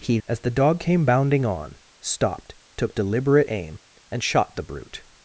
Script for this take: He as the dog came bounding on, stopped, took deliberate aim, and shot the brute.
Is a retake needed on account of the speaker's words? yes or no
no